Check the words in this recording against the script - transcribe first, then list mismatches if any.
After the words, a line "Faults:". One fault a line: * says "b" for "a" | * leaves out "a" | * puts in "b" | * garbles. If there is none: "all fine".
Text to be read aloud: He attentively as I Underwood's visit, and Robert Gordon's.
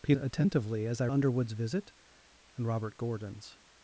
He attentively as I Underwood's visit, and Robert Gordon's.
Faults:
all fine